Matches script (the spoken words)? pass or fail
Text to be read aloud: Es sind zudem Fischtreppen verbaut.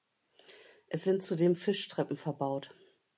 pass